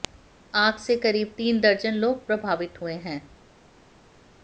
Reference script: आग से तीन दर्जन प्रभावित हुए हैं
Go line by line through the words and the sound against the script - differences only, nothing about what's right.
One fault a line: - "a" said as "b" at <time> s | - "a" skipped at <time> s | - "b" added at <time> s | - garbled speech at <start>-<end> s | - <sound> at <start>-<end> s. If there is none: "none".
- "करीब" added at 0.9 s
- "लोग" added at 1.9 s